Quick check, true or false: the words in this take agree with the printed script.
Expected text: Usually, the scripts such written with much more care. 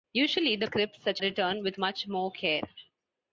true